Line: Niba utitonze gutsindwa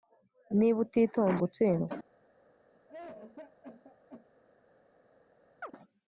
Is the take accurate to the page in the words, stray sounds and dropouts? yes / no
no